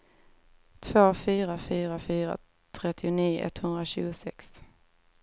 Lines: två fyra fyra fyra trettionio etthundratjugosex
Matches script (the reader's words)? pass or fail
pass